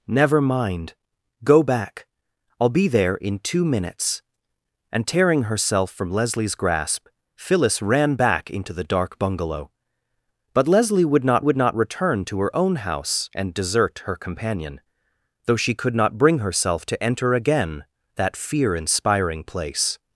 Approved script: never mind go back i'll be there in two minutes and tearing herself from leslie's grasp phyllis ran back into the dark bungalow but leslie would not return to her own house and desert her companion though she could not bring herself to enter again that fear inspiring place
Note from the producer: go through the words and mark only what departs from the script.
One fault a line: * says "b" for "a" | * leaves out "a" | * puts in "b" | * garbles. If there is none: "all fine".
* puts in "would not"